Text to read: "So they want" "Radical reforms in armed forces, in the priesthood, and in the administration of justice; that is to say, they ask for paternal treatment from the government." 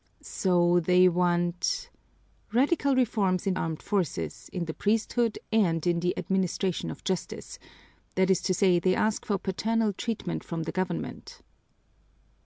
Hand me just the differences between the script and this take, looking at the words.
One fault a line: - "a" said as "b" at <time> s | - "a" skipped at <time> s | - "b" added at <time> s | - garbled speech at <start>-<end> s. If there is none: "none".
none